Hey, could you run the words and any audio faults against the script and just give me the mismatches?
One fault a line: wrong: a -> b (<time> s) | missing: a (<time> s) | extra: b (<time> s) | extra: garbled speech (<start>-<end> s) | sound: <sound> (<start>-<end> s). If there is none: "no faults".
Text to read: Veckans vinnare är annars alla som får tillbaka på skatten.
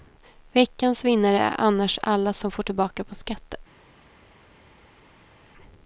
no faults